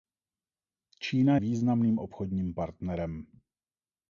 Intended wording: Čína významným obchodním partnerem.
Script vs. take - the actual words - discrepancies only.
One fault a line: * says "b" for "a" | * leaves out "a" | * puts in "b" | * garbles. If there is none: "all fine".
all fine